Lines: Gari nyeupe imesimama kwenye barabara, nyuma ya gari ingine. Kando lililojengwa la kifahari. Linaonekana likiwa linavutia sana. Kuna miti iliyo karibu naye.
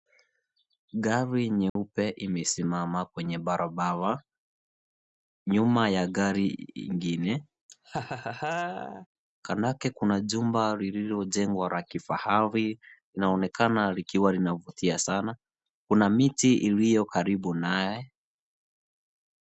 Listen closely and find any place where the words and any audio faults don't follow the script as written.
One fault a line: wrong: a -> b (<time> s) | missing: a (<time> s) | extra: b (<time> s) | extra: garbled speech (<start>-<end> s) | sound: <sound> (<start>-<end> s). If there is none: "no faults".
sound: dropout (1.7-1.8 s)
sound: laugh (7.7-9.1 s)
extra: yake kuna jumba (9.7 s)